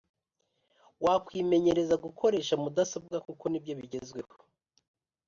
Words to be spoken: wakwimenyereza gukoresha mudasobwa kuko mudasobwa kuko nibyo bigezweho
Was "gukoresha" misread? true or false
false